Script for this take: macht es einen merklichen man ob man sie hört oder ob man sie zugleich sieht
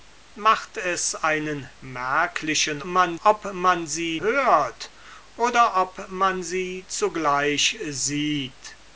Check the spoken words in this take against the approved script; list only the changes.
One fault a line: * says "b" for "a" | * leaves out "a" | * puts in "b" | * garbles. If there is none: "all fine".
all fine